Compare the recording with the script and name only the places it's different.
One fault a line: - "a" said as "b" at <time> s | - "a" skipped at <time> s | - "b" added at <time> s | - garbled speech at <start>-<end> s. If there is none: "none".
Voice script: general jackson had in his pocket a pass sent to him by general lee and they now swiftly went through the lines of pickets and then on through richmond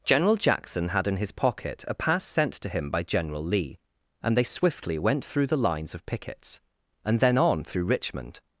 - "now" skipped at 4.4 s